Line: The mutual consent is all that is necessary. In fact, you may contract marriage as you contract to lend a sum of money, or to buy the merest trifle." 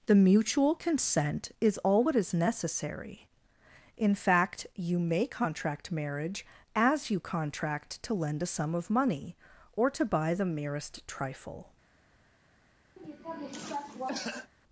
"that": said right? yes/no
no